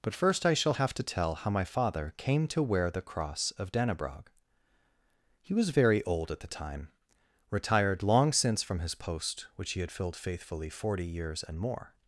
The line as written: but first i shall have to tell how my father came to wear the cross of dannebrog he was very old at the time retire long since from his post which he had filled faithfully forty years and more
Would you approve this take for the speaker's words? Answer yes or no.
no